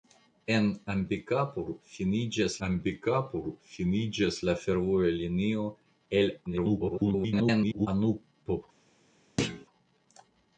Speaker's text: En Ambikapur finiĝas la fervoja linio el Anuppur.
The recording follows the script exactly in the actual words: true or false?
false